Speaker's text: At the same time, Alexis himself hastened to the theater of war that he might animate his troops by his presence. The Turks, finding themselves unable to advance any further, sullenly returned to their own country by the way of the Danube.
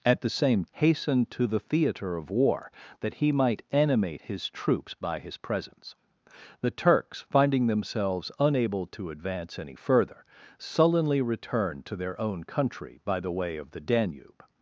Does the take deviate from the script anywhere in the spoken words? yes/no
yes